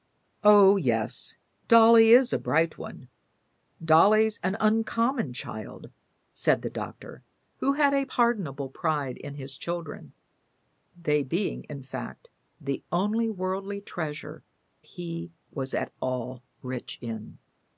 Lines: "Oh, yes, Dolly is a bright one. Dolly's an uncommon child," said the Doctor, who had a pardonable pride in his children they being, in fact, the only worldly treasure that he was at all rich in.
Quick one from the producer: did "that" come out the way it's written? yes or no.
no